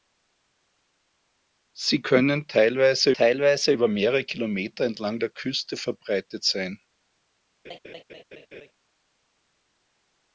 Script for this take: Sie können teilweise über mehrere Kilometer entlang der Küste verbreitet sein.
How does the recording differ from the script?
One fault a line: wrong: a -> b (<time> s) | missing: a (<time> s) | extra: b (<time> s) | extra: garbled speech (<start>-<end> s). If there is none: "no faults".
extra: teilweise (3.1 s)